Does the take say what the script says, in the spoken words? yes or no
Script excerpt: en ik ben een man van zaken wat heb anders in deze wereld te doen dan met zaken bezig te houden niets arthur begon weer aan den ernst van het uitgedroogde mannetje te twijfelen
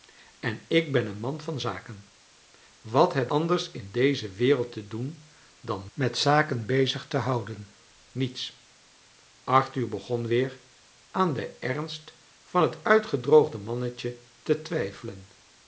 yes